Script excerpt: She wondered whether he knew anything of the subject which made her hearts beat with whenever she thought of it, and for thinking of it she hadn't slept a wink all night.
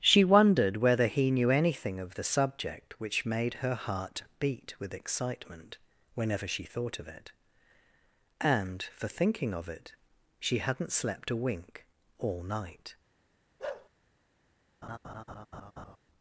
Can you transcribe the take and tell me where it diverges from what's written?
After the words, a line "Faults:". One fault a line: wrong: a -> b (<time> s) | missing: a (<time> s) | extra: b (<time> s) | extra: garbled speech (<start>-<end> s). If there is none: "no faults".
She wondered whether he knew anything of the subject which made her heart beat with excitement whenever she thought of it, and for thinking of it she hadn't slept a wink all night.
Faults:
wrong: hearts -> heart (3.8 s)
extra: excitement (5.0 s)